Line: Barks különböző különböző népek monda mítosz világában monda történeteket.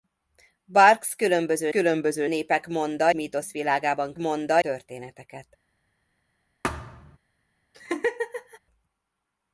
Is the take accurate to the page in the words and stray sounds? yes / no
no